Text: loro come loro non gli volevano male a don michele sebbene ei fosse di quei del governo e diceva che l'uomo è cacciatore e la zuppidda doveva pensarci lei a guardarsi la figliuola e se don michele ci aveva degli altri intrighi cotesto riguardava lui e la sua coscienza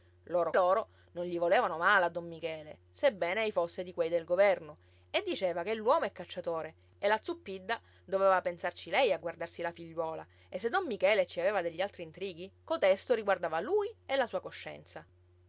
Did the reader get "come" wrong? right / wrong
wrong